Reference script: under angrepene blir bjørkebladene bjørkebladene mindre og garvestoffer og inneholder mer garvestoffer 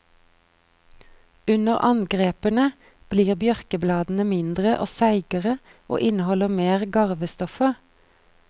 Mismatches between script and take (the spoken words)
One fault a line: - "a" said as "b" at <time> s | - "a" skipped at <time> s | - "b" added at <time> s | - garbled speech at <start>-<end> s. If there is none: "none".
- "bjørkebladene" skipped at 4.2 s
- "garvestoffer" said as "seigere" at 5.0 s